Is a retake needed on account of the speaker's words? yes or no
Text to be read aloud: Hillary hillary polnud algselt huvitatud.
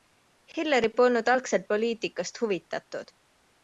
yes